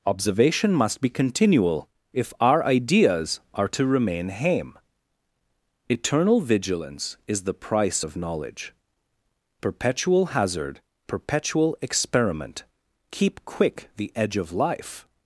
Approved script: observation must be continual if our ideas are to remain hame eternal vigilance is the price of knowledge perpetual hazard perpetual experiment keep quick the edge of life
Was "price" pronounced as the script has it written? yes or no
yes